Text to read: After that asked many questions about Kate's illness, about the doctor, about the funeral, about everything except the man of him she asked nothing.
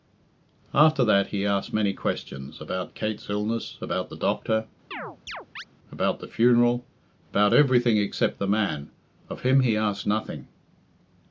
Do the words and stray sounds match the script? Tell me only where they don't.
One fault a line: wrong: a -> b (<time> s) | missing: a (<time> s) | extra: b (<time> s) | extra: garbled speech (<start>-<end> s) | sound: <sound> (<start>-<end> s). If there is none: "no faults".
extra: he (1.3 s)
sound: chirp (4.9-5.6 s)
wrong: she -> he (9.6 s)